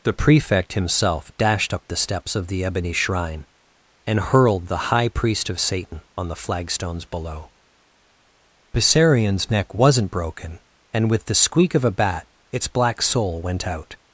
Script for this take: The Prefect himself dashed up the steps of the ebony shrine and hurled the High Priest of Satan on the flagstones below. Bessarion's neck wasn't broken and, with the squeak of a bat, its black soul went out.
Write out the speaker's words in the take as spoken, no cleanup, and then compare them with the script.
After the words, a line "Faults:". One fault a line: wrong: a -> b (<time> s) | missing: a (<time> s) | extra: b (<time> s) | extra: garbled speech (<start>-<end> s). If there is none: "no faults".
The Prefect himself dashed up the steps of the ebony shrine and hurled the High Priest of Satan on the flagstones below. Bessarion's neck wasn't broken and, with the squeak of a bat, its black soul went out.
Faults:
no faults